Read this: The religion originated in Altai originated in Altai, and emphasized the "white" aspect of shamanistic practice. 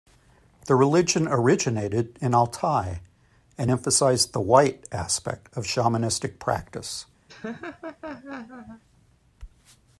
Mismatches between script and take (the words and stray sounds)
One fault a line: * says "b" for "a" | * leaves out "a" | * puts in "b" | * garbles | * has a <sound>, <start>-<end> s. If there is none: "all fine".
* leaves out "originated in Altai"
* has a laugh, 7.3-8.8 s